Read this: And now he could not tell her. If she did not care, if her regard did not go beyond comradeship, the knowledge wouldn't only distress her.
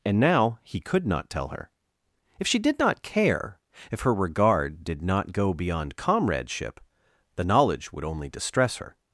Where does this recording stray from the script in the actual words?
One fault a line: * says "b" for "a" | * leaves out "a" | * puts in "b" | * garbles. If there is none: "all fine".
* says "would" for "wouldn't"